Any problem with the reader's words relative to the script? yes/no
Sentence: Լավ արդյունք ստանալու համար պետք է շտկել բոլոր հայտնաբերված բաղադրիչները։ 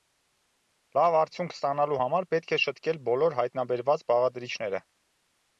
no